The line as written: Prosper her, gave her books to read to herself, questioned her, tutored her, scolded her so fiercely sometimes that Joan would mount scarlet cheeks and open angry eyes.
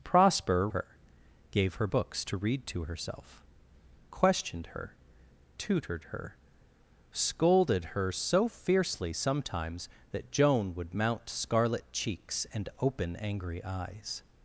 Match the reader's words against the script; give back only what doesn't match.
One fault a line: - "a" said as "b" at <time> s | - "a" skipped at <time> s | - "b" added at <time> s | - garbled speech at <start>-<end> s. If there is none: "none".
none